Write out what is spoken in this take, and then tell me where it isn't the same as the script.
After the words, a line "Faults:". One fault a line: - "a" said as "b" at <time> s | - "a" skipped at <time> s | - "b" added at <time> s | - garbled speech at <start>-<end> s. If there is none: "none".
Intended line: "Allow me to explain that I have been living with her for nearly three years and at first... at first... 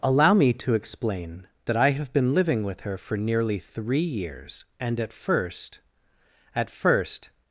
"Allow me to explain that I have been living with her for nearly three years and at first... at first...
Faults:
none